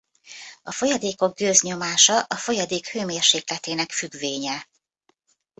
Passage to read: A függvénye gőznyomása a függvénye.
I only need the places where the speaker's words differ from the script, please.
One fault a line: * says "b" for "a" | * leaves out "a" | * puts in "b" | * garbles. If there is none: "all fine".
* says "folyadékok" for "függvénye"
* puts in "folyadék hőmérsékletének"